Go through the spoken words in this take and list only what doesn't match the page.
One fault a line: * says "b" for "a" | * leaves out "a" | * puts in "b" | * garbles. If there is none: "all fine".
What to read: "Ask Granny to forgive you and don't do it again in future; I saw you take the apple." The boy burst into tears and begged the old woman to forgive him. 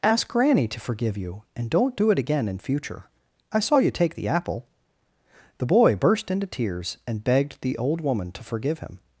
all fine